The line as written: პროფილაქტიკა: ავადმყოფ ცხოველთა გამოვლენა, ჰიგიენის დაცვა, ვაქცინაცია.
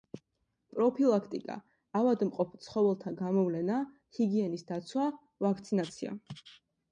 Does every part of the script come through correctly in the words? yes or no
yes